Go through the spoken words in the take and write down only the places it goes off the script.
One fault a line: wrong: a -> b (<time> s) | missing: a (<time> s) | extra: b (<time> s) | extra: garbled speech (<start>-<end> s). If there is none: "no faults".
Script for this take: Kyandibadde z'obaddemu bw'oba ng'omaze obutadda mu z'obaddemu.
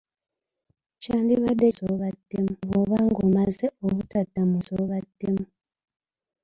no faults